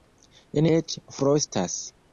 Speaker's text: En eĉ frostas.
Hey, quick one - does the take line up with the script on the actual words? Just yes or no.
yes